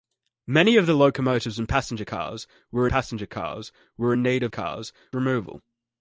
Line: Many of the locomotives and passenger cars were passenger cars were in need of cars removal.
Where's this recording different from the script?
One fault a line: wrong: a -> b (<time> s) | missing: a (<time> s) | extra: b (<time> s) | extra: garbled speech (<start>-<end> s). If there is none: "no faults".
no faults